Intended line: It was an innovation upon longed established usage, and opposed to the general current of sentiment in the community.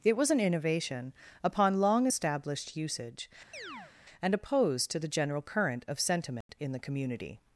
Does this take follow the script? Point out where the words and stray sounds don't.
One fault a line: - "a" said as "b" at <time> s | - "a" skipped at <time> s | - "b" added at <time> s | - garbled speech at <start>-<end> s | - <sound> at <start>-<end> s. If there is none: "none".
- "longed" said as "long" at 1.8 s
- chirp at 3.5-3.9 s
- dropout at 6.4-6.5 s